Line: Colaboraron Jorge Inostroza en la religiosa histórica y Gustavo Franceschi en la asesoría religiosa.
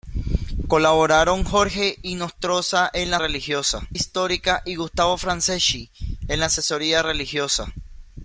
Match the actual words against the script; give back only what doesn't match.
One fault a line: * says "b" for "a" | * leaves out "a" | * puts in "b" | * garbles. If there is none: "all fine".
all fine